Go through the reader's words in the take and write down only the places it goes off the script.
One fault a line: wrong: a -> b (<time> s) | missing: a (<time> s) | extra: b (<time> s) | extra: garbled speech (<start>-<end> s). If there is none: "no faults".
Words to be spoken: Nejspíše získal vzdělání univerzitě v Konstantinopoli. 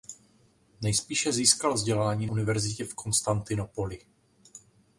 no faults